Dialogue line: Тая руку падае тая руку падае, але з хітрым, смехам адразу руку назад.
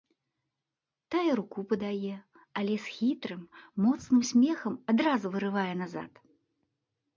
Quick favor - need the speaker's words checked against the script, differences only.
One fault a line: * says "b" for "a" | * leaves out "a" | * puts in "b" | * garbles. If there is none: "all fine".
* leaves out "тая руку падае"
* puts in "моцным"
* says "вырывае" for "руку"